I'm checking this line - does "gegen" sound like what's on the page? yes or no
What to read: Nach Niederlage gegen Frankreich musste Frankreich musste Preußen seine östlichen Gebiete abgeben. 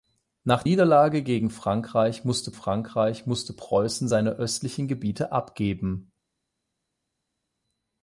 yes